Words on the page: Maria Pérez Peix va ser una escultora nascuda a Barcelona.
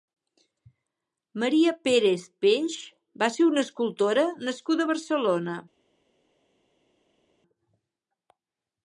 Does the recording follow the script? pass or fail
pass